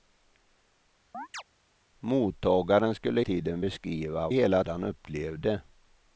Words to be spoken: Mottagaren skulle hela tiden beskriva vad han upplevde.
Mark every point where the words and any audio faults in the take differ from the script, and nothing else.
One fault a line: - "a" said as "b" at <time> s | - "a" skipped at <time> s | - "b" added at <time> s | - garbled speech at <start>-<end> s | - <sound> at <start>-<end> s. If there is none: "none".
- chirp at 1.1-1.4 s
- "hela" skipped at 3.2 s
- "vad" said as "hela" at 4.3 s